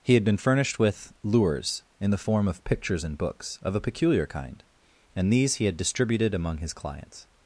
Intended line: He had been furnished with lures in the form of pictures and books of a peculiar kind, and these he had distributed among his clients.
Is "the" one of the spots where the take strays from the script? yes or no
no